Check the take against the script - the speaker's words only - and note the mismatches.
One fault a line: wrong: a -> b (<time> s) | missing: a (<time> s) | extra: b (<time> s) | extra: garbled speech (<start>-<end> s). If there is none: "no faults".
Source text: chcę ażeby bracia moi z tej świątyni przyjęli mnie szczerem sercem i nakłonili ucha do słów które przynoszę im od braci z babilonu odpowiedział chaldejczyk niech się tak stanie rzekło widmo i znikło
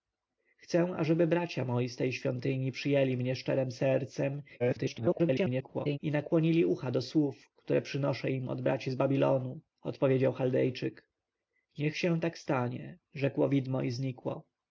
extra: garbled speech (4.6-6.0 s)